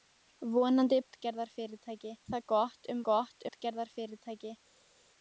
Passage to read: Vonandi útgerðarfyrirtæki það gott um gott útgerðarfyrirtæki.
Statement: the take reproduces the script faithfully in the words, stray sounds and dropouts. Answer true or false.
true